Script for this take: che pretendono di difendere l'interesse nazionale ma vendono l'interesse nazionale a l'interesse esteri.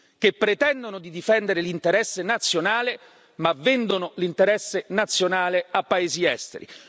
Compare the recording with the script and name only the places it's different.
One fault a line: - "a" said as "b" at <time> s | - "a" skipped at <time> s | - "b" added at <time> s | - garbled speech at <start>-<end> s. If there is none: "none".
- "l'interesse" said as "paesi" at 5.8 s